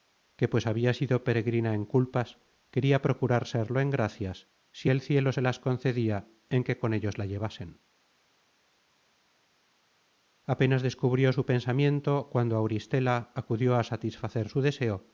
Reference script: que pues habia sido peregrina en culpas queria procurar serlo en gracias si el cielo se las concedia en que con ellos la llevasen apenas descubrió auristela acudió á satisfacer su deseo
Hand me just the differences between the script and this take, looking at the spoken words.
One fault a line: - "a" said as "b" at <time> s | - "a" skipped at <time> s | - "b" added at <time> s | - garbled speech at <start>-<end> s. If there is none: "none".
- "su pensamiento cuando" added at 11.3 s